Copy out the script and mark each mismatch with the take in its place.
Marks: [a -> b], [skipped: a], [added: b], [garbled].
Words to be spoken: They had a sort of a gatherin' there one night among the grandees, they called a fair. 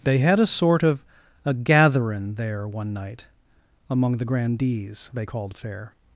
They had a sort of a gatherin' there one night among the grandees, they called [skipped: a] fair.